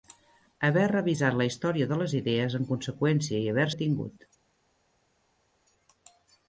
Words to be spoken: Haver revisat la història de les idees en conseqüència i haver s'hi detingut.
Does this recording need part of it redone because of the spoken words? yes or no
yes